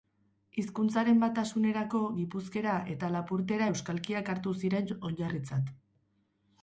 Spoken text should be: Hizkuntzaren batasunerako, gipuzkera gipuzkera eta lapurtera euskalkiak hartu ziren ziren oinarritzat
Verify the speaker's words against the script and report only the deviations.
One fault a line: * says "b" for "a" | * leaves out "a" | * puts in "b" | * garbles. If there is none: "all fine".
* leaves out "gipuzkera"
* leaves out "ziren"